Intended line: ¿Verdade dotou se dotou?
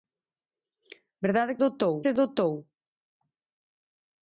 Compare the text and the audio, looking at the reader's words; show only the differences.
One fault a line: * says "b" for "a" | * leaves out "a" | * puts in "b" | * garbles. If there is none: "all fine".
all fine